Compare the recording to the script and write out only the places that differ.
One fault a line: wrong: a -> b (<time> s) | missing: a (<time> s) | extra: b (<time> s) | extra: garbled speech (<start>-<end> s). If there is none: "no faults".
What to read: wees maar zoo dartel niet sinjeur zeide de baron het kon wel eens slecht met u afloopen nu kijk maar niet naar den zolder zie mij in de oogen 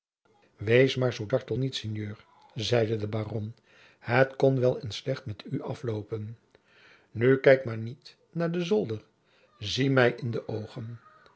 no faults